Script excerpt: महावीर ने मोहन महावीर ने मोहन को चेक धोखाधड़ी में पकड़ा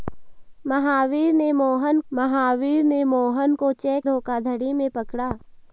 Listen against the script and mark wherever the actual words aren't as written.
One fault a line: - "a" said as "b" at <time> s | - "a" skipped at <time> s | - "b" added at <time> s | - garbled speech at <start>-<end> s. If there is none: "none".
none